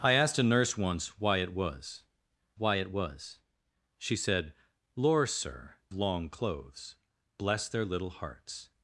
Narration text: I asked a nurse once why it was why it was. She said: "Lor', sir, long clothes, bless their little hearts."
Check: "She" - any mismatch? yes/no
no